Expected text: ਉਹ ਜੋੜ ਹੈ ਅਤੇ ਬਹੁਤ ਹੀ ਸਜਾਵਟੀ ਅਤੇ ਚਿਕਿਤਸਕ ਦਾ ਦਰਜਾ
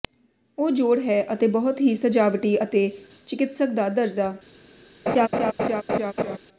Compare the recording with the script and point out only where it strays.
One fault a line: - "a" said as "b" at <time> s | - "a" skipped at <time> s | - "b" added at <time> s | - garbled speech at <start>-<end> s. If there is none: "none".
none